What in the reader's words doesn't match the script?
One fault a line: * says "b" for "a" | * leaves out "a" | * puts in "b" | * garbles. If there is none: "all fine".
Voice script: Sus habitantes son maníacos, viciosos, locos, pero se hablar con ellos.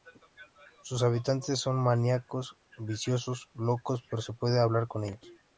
* puts in "puede"